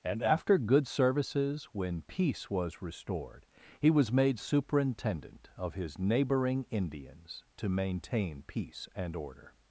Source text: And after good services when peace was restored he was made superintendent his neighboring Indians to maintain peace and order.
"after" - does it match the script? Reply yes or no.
yes